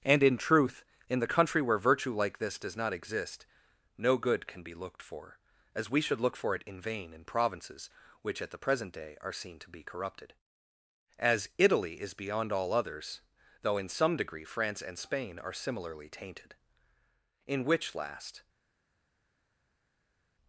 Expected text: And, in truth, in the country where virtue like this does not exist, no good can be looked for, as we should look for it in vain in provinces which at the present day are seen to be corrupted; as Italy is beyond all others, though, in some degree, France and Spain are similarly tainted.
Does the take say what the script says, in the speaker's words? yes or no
no